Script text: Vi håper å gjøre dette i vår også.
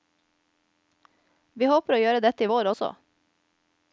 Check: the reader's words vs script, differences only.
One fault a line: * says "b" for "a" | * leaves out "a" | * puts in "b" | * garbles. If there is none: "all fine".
all fine